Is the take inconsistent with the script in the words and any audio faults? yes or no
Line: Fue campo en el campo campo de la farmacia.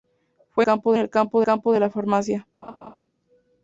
yes